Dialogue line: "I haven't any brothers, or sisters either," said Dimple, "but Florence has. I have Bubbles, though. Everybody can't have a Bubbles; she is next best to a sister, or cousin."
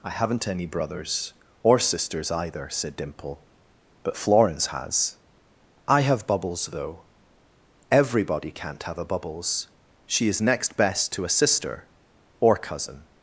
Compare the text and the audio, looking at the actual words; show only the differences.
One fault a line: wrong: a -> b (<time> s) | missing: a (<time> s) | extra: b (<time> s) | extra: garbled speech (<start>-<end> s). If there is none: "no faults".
no faults